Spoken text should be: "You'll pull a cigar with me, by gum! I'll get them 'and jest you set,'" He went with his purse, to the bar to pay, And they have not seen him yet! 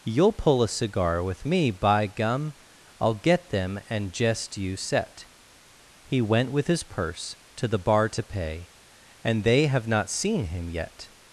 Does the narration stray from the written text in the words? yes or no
no